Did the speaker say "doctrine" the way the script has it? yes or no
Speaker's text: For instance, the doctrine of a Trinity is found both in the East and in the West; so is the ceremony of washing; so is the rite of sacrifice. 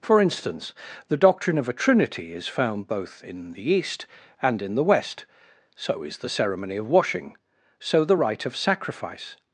yes